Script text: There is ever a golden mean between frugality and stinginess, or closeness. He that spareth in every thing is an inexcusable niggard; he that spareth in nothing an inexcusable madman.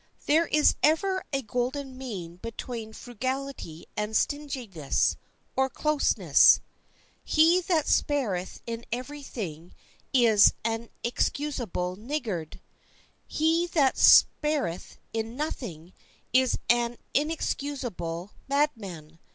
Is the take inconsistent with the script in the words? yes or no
yes